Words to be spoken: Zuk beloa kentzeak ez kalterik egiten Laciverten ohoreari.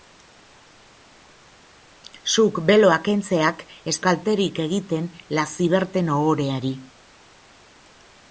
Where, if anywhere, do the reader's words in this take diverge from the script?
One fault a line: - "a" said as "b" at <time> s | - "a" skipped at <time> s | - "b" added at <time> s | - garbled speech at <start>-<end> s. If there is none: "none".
none